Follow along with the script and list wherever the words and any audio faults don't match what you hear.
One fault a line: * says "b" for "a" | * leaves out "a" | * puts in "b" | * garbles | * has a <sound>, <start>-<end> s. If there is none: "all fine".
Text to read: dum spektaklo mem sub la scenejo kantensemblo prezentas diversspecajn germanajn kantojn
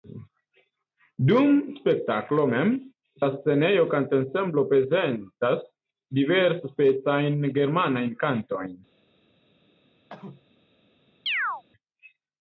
* leaves out "sub"
* has a cough, 10.1-10.5 s
* has a chirp, 11.3-11.6 s